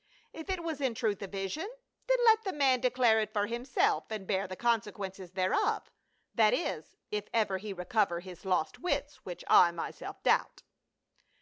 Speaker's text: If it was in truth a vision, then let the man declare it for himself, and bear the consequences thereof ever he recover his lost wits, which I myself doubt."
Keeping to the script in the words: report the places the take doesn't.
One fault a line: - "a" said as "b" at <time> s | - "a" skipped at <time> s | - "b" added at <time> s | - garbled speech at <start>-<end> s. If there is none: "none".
- "that is if" added at 6.3 s